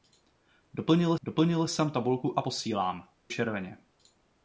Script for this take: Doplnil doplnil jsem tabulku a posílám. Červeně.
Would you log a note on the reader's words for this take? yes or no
no